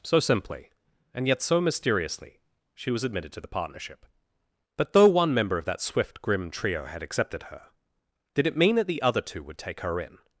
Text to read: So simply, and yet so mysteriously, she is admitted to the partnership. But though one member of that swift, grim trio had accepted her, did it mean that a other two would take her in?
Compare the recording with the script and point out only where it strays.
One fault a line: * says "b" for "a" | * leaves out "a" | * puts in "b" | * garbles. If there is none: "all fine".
* says "was" for "is"
* says "the" for "a"